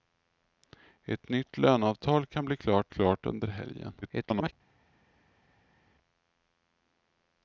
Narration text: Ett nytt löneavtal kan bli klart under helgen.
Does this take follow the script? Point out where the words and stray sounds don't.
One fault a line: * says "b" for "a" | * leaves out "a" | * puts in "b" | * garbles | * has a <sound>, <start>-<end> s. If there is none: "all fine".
* puts in "klart"
* garbles